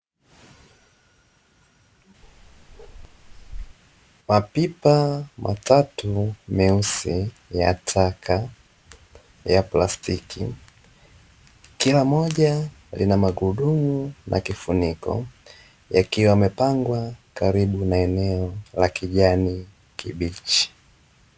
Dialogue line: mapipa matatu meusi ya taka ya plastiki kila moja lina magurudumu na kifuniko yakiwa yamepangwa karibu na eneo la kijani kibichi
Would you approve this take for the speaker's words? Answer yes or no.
yes